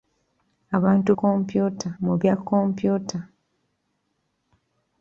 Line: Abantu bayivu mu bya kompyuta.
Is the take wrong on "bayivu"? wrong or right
wrong